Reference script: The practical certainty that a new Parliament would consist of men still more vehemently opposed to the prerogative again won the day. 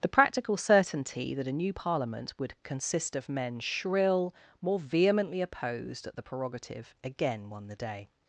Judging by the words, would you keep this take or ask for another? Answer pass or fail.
fail